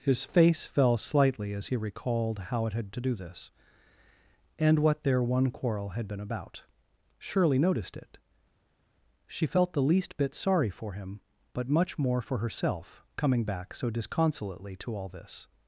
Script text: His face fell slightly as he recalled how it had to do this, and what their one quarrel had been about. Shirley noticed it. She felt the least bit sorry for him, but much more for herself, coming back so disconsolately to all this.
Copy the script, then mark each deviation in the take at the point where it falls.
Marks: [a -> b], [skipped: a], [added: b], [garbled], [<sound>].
His face fell slightly as he recalled how it had to do this, and what their one quarrel had been about. Shirley noticed it. She felt the least bit sorry for him, but much more for herself, coming back so disconsolately to all this.